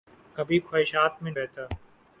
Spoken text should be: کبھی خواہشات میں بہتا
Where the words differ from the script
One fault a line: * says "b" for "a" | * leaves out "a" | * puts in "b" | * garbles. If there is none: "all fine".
all fine